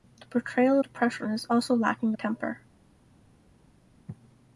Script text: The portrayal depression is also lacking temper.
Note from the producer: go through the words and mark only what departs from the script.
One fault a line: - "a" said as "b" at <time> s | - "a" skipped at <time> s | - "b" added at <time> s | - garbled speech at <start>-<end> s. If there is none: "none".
none